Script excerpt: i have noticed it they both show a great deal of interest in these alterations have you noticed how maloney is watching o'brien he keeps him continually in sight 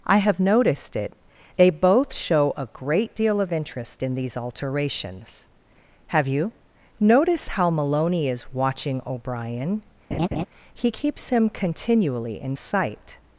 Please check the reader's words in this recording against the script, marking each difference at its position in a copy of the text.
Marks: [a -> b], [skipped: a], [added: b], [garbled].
i have noticed it they both show a great deal of interest in these alterations have you [noticed -> notice] how maloney is watching o'brien he keeps him continually in sight